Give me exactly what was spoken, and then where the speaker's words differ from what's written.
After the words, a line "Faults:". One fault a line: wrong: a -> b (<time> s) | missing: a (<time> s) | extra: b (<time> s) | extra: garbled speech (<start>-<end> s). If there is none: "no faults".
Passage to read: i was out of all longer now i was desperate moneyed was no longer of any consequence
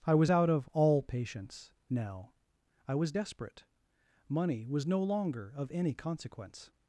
i was out of all patience now i was desperate money was no longer of any consequence
Faults:
wrong: longer -> patience (1.0 s)
wrong: moneyed -> money (4.3 s)